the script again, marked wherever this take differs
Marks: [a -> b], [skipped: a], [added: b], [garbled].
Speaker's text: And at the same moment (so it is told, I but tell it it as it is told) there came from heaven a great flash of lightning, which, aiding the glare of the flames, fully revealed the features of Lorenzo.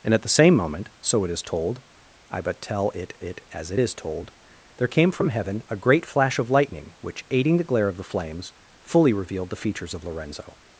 And at the same moment (so it is told, I but tell it it as it is told) there came from heaven a great flash of lightning, which, aiding the glare of the flames, fully revealed the features of Lorenzo.